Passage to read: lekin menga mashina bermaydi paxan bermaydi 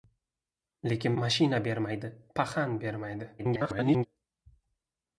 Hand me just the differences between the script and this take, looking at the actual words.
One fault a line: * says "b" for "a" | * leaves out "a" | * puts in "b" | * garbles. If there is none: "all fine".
* leaves out "menga"
* garbles